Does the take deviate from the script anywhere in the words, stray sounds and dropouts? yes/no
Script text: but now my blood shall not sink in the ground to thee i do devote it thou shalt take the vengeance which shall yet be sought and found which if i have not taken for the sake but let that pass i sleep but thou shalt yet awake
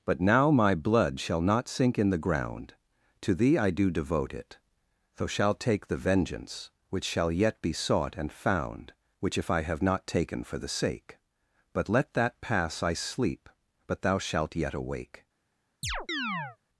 yes